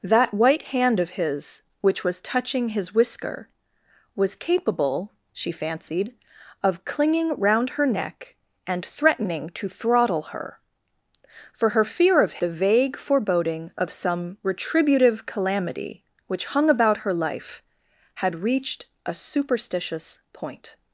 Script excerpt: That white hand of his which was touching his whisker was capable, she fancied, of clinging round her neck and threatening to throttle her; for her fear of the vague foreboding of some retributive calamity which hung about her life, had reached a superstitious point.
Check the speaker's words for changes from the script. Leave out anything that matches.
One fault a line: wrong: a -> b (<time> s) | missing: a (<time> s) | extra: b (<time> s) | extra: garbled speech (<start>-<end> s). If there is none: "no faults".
no faults